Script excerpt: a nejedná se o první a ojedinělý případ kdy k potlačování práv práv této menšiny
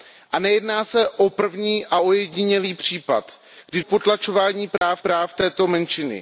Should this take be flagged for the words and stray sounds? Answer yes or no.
yes